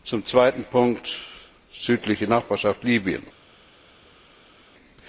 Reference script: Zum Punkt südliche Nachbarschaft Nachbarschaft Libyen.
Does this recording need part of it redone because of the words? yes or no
yes